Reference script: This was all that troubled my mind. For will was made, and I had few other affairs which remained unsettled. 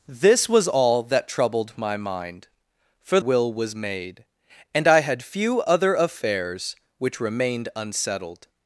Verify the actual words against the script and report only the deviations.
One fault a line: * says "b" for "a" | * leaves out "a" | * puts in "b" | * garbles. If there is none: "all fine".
all fine